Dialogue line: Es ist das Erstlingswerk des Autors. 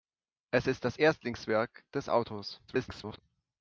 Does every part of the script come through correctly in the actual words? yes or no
no